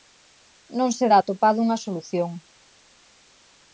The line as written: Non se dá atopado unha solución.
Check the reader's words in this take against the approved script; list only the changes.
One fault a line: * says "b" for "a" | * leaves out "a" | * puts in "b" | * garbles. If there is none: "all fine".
all fine